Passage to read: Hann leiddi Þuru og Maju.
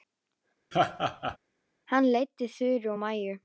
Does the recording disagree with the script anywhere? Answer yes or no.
no